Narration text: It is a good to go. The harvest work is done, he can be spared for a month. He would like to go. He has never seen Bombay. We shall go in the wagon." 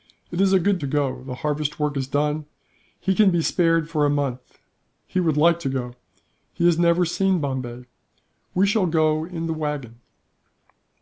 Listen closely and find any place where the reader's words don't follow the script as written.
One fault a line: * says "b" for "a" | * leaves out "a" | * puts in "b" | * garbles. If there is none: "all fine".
all fine